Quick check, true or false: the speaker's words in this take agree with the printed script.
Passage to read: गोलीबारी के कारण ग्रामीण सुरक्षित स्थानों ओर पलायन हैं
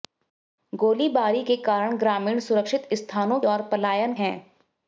true